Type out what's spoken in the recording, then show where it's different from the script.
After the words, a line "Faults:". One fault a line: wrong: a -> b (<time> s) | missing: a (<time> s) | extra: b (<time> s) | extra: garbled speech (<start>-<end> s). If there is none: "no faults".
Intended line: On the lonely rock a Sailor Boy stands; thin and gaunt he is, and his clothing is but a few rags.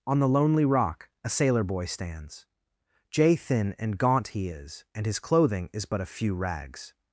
On the lonely rock a Sailor Boy stands; jay thin and gaunt he is, and his clothing is but a few rags.
Faults:
extra: jay (3.1 s)